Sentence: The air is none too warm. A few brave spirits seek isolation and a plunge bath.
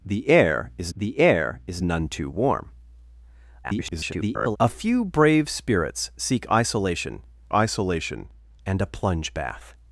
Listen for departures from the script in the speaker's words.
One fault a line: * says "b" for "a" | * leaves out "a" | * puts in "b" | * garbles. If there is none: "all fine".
* puts in "the air is"
* garbles
* puts in "isolation"